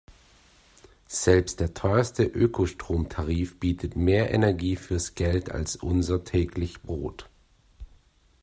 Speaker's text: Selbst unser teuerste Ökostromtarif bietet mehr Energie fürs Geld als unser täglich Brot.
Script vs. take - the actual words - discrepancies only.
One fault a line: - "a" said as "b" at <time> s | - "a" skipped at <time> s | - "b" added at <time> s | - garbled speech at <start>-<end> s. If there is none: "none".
- "unser" said as "der" at 1.6 s